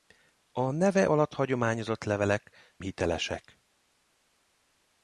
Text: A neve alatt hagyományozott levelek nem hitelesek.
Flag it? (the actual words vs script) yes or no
yes